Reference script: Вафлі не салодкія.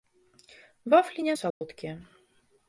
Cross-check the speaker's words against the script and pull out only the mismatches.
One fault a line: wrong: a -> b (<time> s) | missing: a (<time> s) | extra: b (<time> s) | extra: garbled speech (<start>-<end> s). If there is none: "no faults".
no faults